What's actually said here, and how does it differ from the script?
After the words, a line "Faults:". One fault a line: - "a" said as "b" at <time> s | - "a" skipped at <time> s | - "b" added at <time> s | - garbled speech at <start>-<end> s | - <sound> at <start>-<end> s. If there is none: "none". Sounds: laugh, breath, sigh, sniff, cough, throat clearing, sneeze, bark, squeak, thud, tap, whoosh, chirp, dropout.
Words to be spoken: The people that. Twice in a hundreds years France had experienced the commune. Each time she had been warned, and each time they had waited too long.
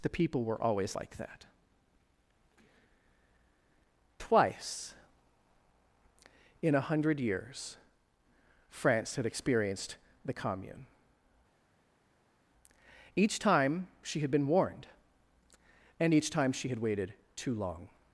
The people were always like that. Twice in a hundred years France had experienced the commune. Each time she had been warned, and each time she had waited too long.
Faults:
- "were always like" added at 0.4 s
- "hundreds" said as "hundred" at 6.8 s
- "they" said as "she" at 16.5 s